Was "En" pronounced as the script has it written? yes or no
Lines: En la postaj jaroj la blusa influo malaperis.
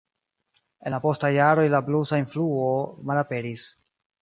yes